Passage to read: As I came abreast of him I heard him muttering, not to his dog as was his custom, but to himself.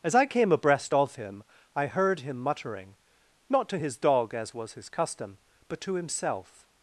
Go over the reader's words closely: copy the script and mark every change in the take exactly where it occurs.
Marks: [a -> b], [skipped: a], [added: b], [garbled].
As I came abreast of him I heard him muttering, not to his dog as was his custom, but to himself.